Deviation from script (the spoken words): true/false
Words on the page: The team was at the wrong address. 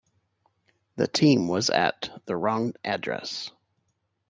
false